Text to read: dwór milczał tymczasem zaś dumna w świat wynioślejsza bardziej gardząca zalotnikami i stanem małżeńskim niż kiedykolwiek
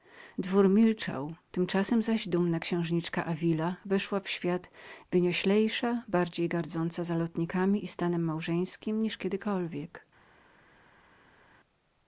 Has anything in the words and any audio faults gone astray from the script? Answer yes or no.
yes